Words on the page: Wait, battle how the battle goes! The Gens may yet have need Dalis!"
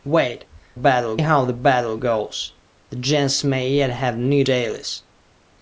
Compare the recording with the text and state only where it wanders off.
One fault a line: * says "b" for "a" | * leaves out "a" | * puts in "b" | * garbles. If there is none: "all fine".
all fine